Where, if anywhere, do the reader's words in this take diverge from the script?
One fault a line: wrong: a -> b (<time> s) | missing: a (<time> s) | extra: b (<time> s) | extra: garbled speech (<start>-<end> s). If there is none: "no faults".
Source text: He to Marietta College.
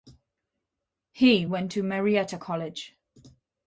extra: went (1.4 s)